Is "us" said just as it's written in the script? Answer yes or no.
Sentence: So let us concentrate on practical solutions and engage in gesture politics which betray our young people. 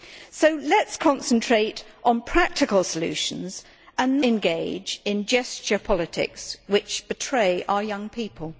yes